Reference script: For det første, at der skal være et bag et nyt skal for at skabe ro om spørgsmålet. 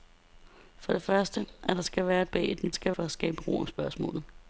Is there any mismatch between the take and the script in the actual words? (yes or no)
no